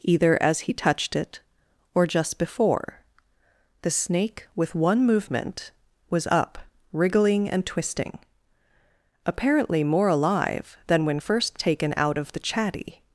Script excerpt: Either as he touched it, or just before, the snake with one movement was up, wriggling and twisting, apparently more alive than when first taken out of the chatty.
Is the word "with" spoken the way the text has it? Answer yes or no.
yes